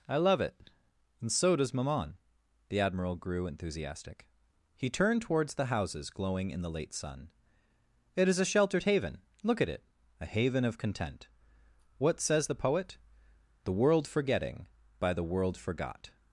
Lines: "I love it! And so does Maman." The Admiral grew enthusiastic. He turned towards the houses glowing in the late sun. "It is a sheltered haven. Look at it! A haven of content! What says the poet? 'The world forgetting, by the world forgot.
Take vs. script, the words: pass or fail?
pass